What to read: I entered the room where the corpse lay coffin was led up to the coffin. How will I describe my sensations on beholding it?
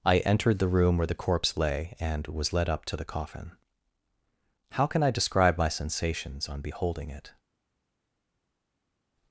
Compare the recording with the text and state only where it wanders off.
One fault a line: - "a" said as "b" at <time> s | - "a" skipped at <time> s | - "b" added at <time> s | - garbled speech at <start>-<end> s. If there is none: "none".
- "coffin" said as "and" at 2.0 s
- "will" said as "can" at 4.9 s